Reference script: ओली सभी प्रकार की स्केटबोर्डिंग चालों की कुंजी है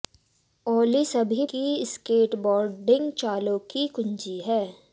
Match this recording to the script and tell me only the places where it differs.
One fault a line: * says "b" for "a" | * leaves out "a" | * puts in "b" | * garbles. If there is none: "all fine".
* leaves out "प्रकार"